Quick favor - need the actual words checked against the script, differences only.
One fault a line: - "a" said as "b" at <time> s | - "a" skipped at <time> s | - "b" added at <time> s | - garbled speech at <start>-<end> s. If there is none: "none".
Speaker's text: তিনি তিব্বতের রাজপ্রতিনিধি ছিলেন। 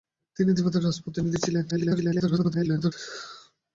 - garbled speech at 1.7-2.9 s